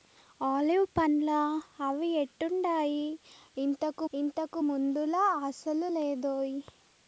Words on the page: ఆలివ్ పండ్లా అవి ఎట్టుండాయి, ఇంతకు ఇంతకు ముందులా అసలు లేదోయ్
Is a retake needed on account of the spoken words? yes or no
no